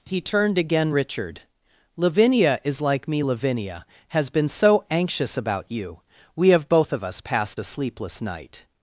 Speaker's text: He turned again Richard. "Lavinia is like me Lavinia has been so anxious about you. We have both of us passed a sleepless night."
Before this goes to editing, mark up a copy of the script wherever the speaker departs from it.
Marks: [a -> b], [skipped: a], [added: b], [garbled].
He turned again Richard. "Lavinia is like me Lavinia has been so anxious about you. We have both of us passed a sleepless night."